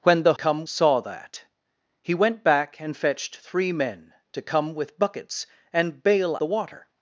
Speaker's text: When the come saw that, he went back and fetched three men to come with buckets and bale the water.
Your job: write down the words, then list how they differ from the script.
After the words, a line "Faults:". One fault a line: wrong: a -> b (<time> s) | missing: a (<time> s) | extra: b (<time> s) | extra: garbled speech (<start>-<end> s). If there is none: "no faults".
When the come saw that, he went back and fetched three men to come with buckets and bale the water.
Faults:
no faults